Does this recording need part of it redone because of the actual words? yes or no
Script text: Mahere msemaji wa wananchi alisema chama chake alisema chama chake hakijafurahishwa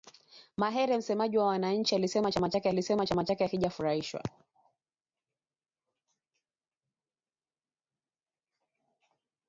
no